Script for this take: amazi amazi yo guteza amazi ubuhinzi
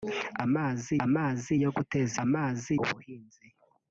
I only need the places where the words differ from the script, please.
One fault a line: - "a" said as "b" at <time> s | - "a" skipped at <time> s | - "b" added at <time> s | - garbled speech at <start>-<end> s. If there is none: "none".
none